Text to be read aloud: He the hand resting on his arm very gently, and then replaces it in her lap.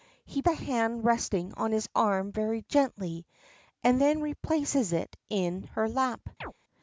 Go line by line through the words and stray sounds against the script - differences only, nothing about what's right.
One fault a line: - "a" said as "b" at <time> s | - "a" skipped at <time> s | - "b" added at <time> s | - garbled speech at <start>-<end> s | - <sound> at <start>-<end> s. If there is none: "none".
- chirp at 6.4-6.5 s